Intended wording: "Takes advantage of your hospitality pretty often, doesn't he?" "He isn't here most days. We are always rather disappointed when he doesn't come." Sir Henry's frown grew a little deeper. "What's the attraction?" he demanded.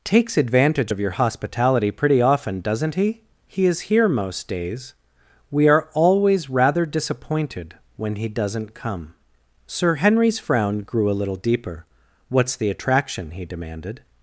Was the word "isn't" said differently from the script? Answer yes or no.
yes